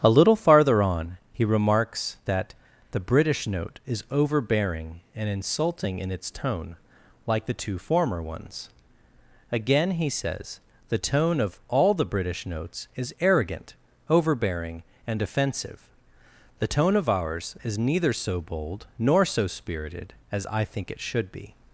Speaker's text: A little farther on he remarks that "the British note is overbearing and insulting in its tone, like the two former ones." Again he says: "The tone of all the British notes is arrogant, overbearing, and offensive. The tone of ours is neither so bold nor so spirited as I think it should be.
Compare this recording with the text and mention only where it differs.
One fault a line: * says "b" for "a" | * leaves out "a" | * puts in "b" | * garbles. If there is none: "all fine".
all fine